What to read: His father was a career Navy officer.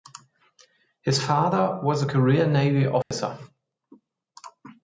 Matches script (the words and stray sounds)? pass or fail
fail